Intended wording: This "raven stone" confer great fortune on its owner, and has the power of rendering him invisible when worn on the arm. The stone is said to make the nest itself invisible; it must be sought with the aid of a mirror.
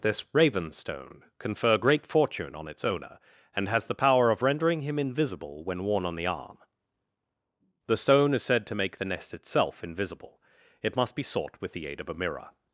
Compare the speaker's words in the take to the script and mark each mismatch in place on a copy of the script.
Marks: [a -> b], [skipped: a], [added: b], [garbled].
This "raven stone" confer great fortune on its owner, and has the power of rendering him invisible when worn on the arm. The stone is said to make the nest itself invisible; it must be sought with the aid of a mirror.